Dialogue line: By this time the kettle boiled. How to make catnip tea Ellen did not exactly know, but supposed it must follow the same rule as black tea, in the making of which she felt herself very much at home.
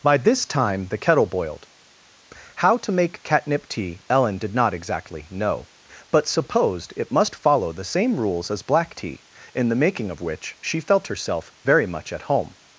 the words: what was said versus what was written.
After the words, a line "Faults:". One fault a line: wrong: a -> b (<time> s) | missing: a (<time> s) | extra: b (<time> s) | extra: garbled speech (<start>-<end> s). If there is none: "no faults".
By this time the kettle boiled. How to make catnip tea Ellen did not exactly know, but supposed it must follow the same rules as black tea, in the making of which she felt herself very much at home.
Faults:
wrong: rule -> rules (8.2 s)